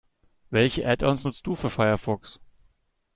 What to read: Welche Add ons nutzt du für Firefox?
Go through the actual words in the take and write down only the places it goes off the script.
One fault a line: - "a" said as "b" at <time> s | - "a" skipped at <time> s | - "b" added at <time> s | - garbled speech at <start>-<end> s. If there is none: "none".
none